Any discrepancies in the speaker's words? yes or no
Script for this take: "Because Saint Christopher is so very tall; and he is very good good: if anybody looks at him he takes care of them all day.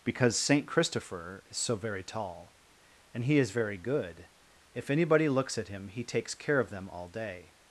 yes